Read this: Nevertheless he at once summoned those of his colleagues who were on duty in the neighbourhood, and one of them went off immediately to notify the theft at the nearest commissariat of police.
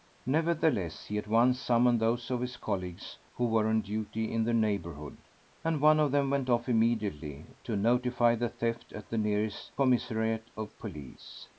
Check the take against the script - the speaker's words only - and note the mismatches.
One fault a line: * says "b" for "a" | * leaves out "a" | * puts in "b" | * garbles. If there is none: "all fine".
all fine